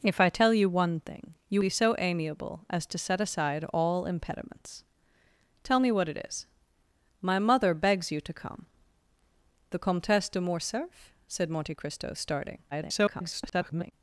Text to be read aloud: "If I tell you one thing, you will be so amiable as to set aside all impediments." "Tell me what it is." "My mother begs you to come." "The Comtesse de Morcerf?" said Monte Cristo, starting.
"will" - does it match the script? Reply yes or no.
no